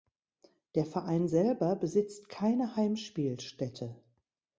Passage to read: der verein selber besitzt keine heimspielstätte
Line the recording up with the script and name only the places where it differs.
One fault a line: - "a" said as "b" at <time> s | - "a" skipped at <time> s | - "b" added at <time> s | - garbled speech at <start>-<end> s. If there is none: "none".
none